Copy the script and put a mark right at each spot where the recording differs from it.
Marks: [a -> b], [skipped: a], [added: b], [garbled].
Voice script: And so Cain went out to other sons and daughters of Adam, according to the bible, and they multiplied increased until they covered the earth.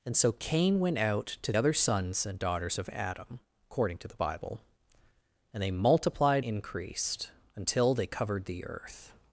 And so Cain went out to other sons and daughters of Adam, according to the bible, and they multiplied increased until they covered the earth.